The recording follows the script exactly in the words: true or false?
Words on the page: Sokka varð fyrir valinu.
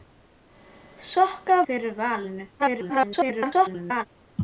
false